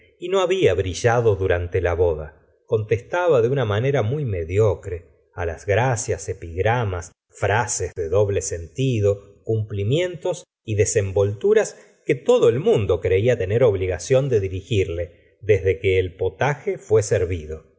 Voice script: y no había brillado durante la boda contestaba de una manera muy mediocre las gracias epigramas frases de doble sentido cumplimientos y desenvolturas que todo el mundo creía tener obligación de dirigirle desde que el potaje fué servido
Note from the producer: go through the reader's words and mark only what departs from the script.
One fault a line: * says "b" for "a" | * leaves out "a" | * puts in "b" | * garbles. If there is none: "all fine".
all fine